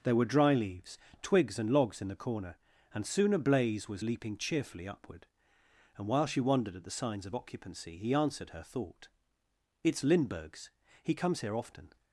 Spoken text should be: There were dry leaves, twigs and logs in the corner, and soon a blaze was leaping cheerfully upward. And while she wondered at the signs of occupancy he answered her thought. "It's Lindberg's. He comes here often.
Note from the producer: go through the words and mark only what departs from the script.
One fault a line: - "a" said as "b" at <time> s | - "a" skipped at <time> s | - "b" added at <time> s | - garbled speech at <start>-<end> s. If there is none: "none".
none